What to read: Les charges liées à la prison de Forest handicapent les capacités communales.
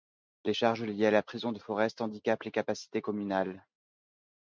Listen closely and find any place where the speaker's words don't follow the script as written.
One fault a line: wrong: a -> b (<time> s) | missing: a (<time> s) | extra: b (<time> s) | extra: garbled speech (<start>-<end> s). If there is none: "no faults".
no faults